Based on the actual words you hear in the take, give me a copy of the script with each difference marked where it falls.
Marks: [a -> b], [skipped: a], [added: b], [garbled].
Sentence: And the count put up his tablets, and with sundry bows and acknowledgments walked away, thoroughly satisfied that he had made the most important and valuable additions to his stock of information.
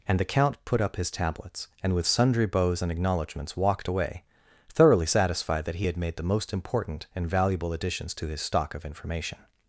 And the count put up his tablets, and with sundry bows and acknowledgments walked away, thoroughly satisfied that he had made the most important and valuable additions to his stock of information.